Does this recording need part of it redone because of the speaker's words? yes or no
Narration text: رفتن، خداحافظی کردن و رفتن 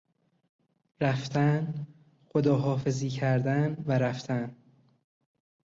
no